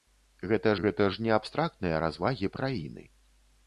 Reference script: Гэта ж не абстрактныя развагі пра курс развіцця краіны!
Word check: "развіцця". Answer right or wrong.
wrong